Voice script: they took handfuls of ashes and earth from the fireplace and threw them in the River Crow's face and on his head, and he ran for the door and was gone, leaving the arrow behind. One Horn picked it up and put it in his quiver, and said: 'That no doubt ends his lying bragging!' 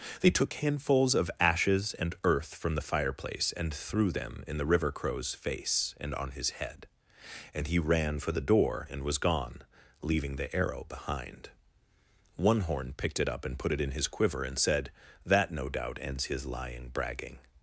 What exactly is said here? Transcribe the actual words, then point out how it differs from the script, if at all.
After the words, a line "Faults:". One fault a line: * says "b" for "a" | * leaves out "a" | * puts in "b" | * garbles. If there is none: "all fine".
they took handfuls of ashes and earth from the fireplace and threw them in the River Crow's face and on his head, and he ran for the door and was gone, leaving the arrow behind. One Horn picked it up and put it in his quiver, and said: 'That no doubt ends his lying bragging!'
Faults:
all fine